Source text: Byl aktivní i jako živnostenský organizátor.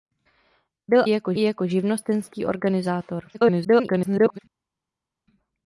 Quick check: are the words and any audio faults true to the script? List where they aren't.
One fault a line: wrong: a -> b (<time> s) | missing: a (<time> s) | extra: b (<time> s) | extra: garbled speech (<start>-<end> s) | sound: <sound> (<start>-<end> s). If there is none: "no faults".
wrong: aktivní -> jako (1.1 s)
extra: garbled speech (3.3-4.4 s)